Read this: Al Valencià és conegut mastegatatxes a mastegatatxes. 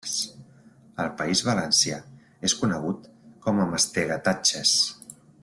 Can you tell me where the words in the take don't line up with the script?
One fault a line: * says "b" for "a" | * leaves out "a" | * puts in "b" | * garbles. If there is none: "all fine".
* puts in "País"
* says "com" for "mastegatatxes"